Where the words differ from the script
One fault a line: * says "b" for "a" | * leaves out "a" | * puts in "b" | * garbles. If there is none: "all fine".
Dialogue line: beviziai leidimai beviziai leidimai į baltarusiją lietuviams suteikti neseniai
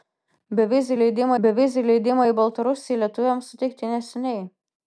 all fine